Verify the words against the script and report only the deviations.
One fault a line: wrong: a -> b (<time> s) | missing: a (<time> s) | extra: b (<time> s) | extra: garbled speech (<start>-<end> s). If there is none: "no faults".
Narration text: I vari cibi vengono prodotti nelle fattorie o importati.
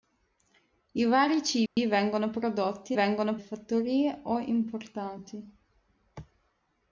wrong: nelle -> vengono (2.9 s)